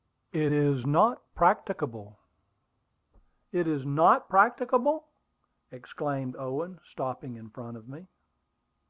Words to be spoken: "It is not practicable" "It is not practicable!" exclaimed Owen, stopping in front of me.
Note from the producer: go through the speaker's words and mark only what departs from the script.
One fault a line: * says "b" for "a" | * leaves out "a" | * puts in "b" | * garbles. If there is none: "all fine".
all fine